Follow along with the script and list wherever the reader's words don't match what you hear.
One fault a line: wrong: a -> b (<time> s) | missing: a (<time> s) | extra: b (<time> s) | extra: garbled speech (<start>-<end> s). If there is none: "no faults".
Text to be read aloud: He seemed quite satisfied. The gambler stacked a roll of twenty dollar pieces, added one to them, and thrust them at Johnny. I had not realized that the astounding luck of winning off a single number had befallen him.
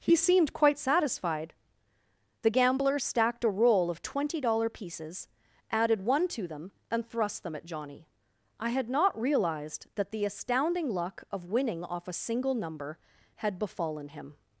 no faults